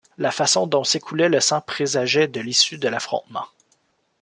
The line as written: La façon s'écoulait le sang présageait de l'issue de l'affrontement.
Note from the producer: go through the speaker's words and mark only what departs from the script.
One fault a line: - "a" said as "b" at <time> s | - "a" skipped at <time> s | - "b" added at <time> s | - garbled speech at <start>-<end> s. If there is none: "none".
- "dont" added at 0.7 s